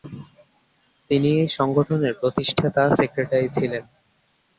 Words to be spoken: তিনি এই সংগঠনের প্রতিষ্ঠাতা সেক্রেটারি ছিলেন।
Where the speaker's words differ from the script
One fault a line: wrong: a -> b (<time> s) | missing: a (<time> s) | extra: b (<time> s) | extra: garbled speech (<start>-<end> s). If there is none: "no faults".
no faults